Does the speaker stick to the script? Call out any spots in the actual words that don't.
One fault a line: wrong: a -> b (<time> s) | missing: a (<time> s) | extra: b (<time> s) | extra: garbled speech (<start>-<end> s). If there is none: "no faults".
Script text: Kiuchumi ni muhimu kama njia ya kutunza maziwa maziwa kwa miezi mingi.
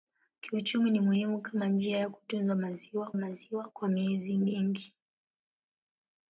no faults